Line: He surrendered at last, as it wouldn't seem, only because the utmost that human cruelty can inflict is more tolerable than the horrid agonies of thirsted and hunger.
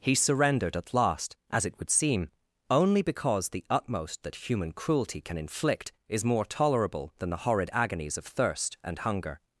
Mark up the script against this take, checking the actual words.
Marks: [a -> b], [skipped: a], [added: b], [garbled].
He surrendered at last, as it [wouldn't -> would] seem, only because the utmost that human cruelty can inflict is more tolerable than the horrid agonies of [thirsted -> thirst] and hunger.